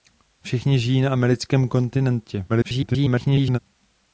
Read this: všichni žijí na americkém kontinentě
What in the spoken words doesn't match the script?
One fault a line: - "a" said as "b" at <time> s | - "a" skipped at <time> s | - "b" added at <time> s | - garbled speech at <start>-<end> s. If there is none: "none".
- garbled speech at 2.5-3.6 s